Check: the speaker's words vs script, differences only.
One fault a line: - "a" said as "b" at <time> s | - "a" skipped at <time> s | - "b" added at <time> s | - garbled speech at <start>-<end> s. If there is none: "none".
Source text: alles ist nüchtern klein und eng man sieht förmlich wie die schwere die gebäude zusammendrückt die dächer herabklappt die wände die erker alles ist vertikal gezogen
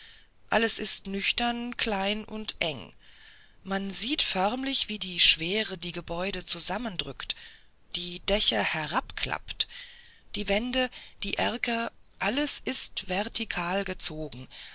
none